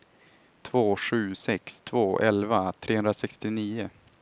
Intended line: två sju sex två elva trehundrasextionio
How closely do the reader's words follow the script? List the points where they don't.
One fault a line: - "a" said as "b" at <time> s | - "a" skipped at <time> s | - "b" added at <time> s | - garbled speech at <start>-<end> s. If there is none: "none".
none